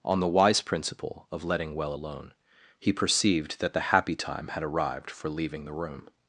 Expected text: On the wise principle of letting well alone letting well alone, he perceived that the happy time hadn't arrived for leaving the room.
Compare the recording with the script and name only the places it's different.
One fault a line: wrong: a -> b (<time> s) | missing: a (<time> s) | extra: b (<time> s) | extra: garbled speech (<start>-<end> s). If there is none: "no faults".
missing: letting well alone (2.3 s)
wrong: hadn't -> had (4.5 s)